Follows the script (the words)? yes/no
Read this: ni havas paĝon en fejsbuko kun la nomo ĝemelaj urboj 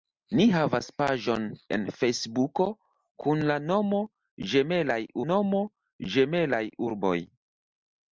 no